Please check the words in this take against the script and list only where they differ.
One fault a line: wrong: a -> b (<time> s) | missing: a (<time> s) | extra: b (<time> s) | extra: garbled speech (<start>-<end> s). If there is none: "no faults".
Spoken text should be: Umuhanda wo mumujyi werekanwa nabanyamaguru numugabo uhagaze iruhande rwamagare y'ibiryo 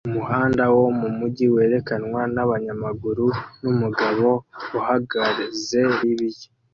missing: iruhande rwamagare (5.8 s)